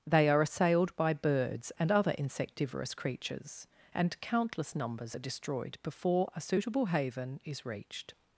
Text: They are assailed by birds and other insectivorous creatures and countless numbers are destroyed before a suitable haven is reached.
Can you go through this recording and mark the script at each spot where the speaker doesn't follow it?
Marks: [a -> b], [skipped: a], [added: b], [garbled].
They are assailed by birds and other insectivorous creatures and countless numbers are destroyed before a suitable haven is reached.